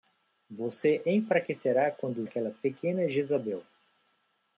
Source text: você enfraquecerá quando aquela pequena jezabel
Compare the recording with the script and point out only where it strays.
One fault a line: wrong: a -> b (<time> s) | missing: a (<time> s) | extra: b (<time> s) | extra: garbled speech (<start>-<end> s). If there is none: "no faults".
no faults